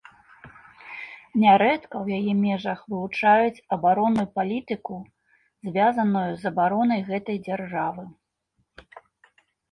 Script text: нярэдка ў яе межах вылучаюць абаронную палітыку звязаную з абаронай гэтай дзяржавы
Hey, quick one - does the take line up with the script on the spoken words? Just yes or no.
yes